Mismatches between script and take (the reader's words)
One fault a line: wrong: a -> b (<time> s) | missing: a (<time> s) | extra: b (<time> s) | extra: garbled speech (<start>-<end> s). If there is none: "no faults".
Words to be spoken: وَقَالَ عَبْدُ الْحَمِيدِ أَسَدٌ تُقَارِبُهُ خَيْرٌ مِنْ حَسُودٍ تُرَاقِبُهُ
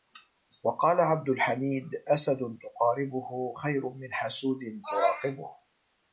no faults